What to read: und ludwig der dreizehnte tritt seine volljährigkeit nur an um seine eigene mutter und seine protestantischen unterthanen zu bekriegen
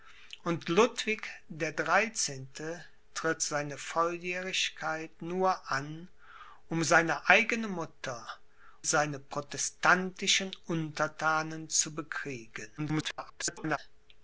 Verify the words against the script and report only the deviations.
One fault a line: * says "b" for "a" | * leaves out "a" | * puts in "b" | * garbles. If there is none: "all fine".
* leaves out "und"
* garbles